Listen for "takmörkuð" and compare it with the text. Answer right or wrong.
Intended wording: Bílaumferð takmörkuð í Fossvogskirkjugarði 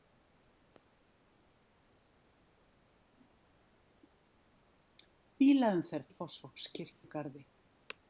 wrong